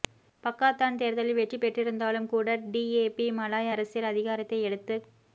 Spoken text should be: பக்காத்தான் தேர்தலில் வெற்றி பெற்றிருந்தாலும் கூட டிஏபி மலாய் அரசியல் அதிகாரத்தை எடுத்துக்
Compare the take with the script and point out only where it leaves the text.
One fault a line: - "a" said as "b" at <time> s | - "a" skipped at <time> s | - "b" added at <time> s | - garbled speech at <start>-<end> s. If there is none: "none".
none